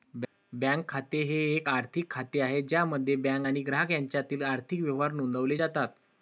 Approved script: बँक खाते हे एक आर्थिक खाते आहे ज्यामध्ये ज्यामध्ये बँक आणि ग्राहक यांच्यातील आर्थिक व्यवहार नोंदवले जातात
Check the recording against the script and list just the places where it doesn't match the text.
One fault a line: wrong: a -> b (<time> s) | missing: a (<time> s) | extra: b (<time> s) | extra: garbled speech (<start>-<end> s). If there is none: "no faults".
missing: ज्यामध्ये (3.1 s)